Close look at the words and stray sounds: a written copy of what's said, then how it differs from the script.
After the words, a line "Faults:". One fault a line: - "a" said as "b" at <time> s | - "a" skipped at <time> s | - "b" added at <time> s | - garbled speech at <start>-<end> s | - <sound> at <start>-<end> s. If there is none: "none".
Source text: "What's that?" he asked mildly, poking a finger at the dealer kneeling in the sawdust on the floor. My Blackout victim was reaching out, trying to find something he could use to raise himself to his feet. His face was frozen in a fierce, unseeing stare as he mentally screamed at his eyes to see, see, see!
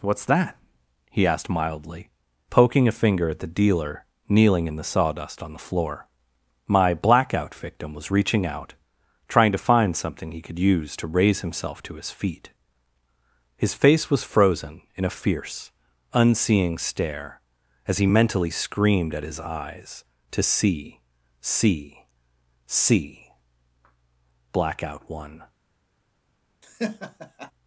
"What's that?" he asked mildly, poking a finger at the dealer kneeling in the sawdust on the floor. My Blackout victim was reaching out, trying to find something he could use to raise himself to his feet. His face was frozen in a fierce, unseeing stare as he mentally screamed at his eyes to see, see, see! "Blackout!" one
Faults:
- "Blackout one" added at 24.5 s
- laugh at 26.6-27.5 s